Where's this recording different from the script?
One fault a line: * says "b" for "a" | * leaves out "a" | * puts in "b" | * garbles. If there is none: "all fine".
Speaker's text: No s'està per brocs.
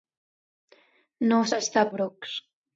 * leaves out "per"